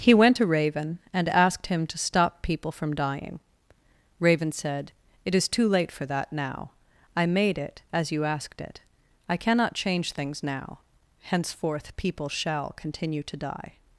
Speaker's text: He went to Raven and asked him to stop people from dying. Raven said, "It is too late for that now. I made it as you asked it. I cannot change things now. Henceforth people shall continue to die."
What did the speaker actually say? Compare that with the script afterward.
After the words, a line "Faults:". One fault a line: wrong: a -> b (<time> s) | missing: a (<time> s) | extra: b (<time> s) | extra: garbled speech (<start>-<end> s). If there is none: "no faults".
He went to Raven and asked him to stop people from dying. Raven said, "It is too late for that now. I made it as you asked it. I cannot change things now. Henceforth people shall continue to die."
Faults:
no faults